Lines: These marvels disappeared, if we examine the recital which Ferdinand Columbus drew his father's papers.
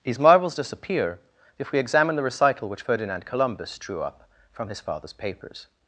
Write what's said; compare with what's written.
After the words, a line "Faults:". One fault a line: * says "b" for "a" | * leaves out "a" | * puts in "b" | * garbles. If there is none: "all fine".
These marvels disappear, if we examine the recital which Ferdinand Columbus drew up from his father's papers.
Faults:
* says "disappear" for "disappeared"
* puts in "up from"